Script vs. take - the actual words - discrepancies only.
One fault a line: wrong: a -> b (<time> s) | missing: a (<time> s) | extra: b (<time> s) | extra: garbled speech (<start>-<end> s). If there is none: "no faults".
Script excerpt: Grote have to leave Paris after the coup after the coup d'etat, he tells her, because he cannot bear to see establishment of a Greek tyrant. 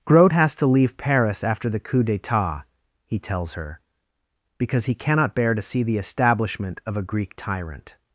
wrong: have -> has (0.3 s)
missing: after the coup (2.0 s)
extra: the (5.8 s)